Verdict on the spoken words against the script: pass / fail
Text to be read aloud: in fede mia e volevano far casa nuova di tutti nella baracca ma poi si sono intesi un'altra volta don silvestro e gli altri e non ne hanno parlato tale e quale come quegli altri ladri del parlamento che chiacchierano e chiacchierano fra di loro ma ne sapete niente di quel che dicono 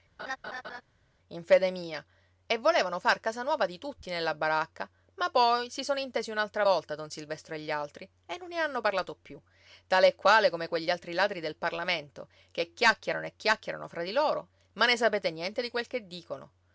fail